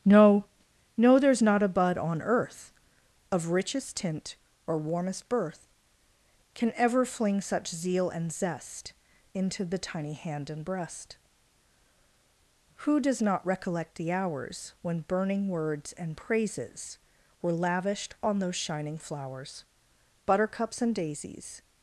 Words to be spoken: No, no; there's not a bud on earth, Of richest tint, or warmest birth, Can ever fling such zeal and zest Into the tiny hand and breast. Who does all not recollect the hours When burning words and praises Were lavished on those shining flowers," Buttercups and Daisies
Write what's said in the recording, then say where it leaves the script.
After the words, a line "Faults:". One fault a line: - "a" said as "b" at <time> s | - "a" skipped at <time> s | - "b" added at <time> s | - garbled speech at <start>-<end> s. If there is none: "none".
No, no; there's not a bud on earth, Of richest tint, or warmest birth, Can ever fling such zeal and zest Into the tiny hand and breast. Who does not recollect the hours When burning words and praises Were lavished on those shining flowers," Buttercups and Daisies
Faults:
- "all" skipped at 13.2 s